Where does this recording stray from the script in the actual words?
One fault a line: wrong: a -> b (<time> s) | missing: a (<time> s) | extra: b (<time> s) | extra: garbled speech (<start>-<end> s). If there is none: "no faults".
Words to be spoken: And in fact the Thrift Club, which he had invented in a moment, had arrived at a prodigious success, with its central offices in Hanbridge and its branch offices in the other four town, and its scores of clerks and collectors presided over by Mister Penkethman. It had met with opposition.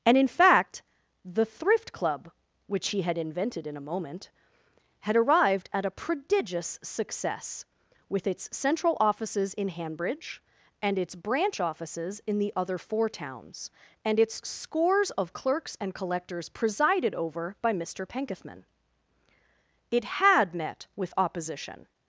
wrong: town -> towns (13.1 s)